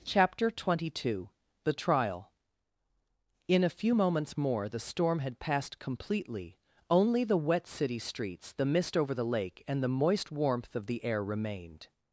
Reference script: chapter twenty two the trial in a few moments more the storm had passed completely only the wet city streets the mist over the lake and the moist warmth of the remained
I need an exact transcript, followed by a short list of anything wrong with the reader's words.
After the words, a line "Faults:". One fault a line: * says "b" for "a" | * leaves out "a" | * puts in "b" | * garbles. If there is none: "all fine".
chapter twenty two the trial in a few moments more the storm had passed completely only the wet city streets the mist over the lake and the moist warmth of the air remained
Faults:
* puts in "air"